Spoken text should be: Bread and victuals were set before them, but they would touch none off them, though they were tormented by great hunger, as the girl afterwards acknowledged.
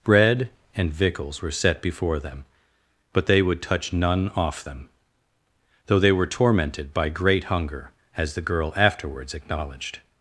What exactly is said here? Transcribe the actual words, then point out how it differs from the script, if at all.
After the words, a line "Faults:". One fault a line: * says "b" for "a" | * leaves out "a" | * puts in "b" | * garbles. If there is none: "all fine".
Bread and victuals were set before them, but they would touch none off them, though they were tormented by great hunger, as the girl afterwards acknowledged.
Faults:
all fine